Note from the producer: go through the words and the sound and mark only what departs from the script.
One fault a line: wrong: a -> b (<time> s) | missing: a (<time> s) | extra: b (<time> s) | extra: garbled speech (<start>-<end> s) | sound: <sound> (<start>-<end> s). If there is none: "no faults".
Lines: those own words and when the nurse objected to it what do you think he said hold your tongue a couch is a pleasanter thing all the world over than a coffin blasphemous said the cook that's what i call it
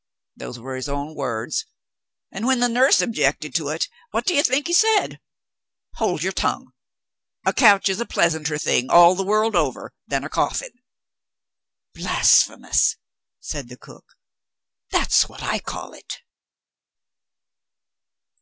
extra: were his (0.6 s)